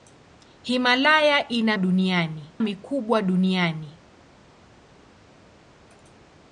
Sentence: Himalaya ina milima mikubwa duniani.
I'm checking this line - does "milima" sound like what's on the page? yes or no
no